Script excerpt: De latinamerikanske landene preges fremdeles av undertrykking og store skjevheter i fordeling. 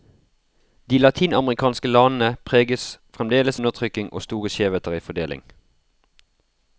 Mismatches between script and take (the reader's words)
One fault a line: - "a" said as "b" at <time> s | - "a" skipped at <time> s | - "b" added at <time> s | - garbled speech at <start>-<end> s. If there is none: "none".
- "av" skipped at 3.6 s